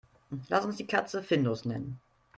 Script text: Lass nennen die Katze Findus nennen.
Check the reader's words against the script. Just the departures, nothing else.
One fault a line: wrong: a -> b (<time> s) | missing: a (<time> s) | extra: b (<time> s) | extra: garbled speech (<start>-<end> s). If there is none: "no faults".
wrong: nennen -> uns (0.7 s)